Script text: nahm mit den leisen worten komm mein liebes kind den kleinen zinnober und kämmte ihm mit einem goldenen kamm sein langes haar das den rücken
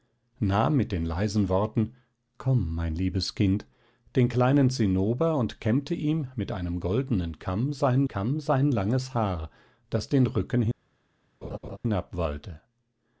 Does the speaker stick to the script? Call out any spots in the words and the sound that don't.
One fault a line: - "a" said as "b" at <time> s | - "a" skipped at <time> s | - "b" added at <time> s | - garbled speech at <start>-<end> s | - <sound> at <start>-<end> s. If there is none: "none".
- "kamm sein" added at 8.1 s
- laugh at 11.4-11.8 s